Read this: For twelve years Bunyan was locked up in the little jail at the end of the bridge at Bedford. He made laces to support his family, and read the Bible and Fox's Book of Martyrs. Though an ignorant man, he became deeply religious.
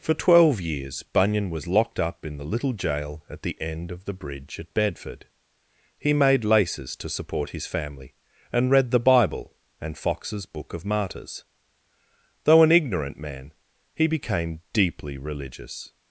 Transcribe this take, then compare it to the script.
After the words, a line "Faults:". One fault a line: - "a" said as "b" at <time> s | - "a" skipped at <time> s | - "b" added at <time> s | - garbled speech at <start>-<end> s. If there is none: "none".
For twelve years Bunyan was locked up in the little jail at the end of the bridge at Bedford. He made laces to support his family, and read the Bible and Fox's Book of Martyrs. Though an ignorant man, he became deeply religious.
Faults:
none